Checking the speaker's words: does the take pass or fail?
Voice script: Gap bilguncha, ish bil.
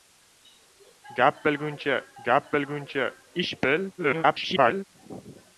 fail